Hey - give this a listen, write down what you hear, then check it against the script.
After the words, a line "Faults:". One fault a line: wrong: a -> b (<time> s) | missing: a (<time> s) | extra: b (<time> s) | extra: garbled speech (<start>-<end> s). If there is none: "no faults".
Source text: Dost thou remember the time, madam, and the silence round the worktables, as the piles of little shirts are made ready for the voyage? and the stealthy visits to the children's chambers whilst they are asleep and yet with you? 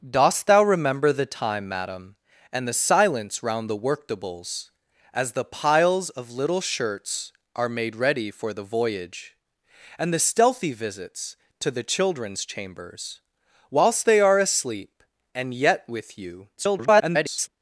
Dost thou remember the time, madam, and the silence round the worktables, as the piles of little shirts are made ready for the voyage? and the stealthy visits to the children's chambers whilst they are asleep and yet with you? [garbled]
Faults:
extra: garbled speech (16.6-17.5 s)